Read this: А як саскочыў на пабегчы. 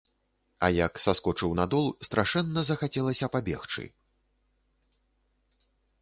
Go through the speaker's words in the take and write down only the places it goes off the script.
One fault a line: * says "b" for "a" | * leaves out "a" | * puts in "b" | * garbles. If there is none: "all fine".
* puts in "дол страшэнна захацелася"